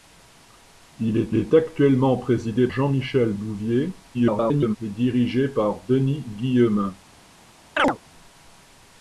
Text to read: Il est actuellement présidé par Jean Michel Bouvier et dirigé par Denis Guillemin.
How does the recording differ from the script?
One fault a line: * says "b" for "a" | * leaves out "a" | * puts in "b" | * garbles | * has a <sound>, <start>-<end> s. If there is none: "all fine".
* puts in "est"
* leaves out "par"
* garbles
* has a chirp, 7.8-8.0 s